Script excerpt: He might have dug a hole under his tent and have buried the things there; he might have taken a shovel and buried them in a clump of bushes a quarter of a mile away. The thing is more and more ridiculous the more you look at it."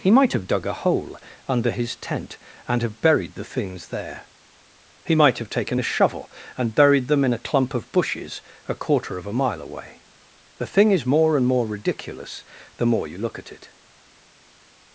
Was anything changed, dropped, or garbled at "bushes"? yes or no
no